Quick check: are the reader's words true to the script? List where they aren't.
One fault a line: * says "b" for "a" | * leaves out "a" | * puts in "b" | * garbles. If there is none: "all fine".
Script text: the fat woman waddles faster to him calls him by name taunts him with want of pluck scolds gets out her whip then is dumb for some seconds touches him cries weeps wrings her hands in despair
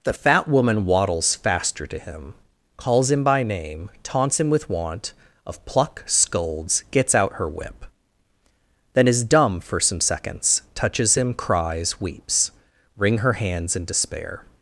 * says "wring" for "wrings"